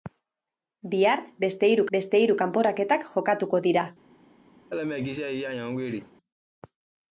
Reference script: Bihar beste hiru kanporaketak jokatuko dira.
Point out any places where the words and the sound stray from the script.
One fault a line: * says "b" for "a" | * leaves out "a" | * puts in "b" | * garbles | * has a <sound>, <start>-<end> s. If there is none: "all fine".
* puts in "beste hiru"
* has a laugh, 4.7-6.1 s